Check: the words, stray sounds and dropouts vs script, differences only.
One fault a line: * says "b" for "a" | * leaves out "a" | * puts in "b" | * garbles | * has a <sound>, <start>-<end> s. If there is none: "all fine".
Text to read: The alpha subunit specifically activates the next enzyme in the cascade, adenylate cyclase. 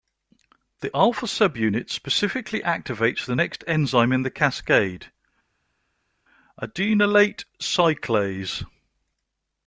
all fine